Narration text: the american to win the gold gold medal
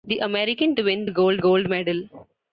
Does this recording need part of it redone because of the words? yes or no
no